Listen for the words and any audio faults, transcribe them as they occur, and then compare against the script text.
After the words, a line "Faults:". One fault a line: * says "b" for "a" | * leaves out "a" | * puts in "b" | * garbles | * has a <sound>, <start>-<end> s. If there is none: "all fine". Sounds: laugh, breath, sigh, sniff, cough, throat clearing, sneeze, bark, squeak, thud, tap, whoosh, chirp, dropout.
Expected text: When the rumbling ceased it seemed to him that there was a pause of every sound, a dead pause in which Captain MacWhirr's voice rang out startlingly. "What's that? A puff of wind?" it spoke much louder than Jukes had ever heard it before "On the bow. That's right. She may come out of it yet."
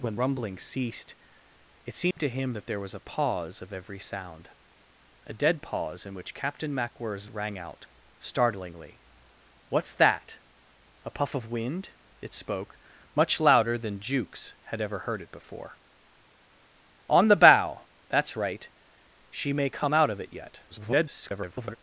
When rumbling ceased it seemed to him that there was a pause of every sound, a dead pause in which Captain MacWhirr's rang out startlingly. "What's that? A puff of wind?" it spoke much louder than Jukes had ever heard it before "On the bow. That's right. She may come out of it yet." [garbled]
Faults:
* leaves out "the"
* has a dropout, 2.1-2.2 s
* leaves out "voice"
* garbles